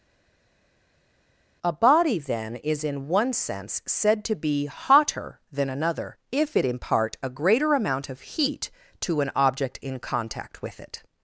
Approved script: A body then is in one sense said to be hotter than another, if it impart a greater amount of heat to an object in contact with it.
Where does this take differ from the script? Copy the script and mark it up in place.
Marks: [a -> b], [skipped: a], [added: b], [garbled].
A body then is in one sense said to be hotter than another, if it impart a greater amount of heat to an object in contact with it.